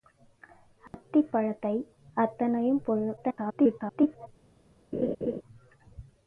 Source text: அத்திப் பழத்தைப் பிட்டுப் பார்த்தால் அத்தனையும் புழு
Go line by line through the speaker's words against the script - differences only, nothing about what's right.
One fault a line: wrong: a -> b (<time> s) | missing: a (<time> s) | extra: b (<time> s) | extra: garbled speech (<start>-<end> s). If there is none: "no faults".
missing: பிட்டுப் பார்த்தால் (1.8 s)
extra: garbled speech (3.2-4.3 s)